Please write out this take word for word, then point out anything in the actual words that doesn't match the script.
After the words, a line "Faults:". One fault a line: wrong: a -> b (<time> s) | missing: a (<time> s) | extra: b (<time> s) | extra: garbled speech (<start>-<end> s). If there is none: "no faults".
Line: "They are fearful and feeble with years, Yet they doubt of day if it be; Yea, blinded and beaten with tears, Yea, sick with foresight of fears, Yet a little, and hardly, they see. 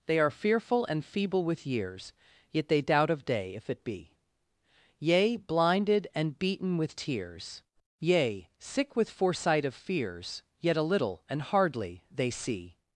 "They are fearful and feeble with years, Yet they doubt of day if it be; Yea, blinded and beaten with tears, Yea, sick with foresight of fears, Yet a little, and hardly, they see.
Faults:
no faults